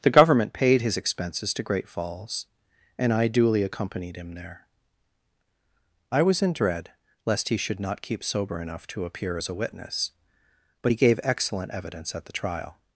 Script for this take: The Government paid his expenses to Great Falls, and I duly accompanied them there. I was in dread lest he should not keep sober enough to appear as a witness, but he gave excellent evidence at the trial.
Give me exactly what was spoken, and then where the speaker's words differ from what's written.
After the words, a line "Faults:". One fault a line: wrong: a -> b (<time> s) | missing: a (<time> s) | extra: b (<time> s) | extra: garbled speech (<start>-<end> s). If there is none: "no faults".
The Government paid his expenses to Great Falls, and I duly accompanied him there. I was in dread lest he should not keep sober enough to appear as a witness, but he gave excellent evidence at the trial.
Faults:
wrong: them -> him (4.2 s)